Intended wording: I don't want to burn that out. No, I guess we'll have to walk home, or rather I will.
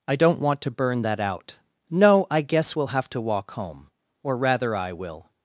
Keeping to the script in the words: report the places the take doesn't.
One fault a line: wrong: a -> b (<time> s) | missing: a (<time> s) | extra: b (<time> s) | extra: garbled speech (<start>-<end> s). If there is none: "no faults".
no faults